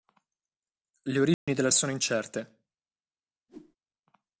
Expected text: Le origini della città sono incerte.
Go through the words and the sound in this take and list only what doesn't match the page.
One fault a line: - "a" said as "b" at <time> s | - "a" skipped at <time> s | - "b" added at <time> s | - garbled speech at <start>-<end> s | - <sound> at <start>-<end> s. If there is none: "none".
- dropout at 1.3-1.5 s
- "città" skipped at 1.7 s
- whoosh at 3.5-3.8 s